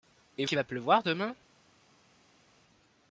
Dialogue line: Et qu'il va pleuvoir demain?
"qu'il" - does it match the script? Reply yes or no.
yes